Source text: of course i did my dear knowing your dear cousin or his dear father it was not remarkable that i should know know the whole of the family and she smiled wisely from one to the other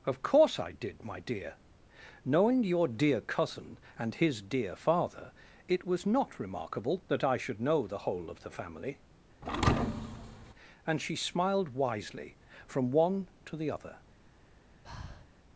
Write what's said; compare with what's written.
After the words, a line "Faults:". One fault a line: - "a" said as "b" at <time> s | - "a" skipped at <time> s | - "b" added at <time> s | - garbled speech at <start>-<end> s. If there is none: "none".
of course i did my dear knowing your dear cousin and his dear father it was not remarkable that i should know the whole of the family and she smiled wisely from one to the other
Faults:
- "or" said as "and" at 4.0 s
- "know" skipped at 7.8 s